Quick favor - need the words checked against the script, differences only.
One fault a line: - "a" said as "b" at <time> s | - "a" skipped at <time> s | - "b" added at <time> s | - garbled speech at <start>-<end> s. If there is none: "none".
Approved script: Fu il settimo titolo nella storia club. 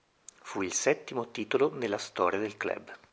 - "del" added at 2.4 s